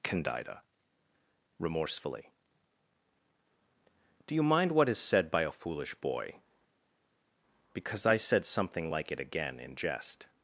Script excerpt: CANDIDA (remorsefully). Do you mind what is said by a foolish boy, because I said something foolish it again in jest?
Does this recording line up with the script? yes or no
no